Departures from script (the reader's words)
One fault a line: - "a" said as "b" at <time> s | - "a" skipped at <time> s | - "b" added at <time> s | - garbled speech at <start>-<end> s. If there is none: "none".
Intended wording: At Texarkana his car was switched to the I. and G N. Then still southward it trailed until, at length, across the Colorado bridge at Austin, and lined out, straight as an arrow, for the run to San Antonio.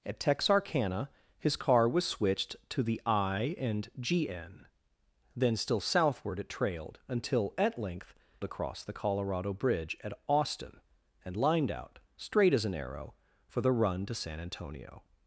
none